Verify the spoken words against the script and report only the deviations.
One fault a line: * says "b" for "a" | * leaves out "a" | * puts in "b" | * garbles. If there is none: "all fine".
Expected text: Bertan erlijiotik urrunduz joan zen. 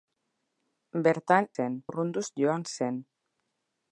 * says "zen" for "erlijiotik"